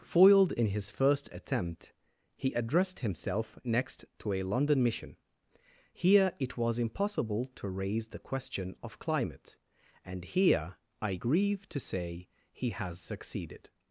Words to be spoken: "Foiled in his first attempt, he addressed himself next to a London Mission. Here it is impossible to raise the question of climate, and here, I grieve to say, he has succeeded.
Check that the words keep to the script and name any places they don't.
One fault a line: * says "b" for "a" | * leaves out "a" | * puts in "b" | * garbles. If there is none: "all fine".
* says "was" for "is"